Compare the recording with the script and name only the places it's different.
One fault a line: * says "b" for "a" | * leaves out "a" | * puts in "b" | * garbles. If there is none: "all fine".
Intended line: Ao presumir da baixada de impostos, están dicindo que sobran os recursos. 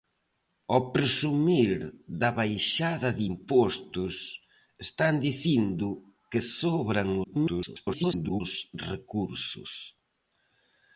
* garbles